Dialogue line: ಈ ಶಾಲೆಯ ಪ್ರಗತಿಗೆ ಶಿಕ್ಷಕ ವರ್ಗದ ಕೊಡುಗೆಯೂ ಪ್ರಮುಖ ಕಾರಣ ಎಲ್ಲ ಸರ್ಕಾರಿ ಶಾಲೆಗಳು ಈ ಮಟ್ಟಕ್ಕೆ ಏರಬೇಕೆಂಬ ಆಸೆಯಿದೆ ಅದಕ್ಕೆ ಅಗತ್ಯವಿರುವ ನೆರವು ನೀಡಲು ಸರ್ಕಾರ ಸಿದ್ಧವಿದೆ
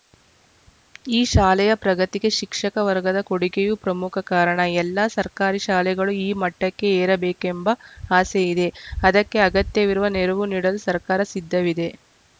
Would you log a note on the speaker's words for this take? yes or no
no